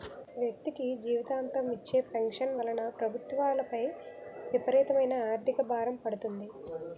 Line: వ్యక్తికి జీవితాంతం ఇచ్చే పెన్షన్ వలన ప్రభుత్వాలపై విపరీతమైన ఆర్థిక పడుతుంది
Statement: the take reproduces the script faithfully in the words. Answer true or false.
false